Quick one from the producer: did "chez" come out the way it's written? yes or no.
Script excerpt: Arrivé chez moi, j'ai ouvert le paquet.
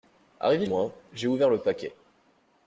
no